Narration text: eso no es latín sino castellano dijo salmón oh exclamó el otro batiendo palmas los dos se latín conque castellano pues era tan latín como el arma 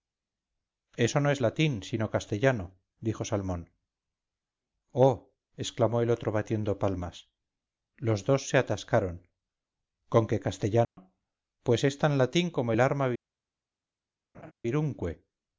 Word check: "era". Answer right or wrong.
wrong